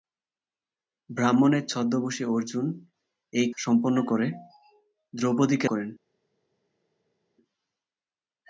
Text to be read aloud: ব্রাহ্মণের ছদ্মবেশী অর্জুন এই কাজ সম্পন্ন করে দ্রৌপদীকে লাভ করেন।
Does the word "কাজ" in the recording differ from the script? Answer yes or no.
yes